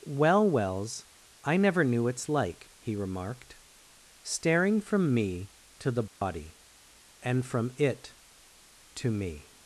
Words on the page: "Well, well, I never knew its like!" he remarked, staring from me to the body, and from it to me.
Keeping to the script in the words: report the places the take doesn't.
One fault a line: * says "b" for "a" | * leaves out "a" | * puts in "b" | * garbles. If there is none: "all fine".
* says "wells" for "well"